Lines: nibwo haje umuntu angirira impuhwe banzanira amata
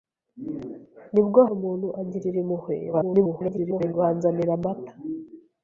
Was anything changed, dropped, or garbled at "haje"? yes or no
yes